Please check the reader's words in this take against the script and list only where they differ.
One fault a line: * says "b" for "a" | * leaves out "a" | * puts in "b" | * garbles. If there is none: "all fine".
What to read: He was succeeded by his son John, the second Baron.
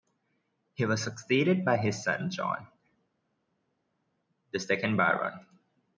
all fine